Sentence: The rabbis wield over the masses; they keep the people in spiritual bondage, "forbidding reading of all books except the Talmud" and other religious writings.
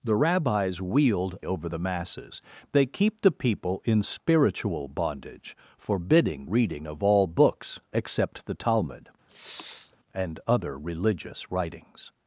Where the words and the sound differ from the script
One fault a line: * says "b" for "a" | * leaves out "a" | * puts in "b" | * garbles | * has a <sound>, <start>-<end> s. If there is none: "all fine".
* has a sniff, 9.3-10.0 s